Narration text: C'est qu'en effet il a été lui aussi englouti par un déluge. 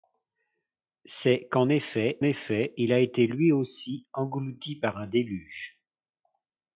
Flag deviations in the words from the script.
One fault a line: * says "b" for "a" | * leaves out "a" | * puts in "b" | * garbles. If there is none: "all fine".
* puts in "effet"